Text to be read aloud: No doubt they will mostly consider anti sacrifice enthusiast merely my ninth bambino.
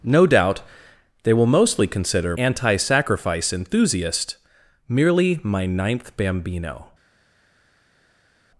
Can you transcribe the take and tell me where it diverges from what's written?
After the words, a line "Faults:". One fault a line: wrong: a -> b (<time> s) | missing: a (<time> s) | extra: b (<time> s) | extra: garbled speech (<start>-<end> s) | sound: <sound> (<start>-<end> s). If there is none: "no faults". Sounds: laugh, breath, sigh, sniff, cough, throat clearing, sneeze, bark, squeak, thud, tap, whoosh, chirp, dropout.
No doubt they will mostly consider anti sacrifice enthusiast merely my ninth bambino.
Faults:
no faults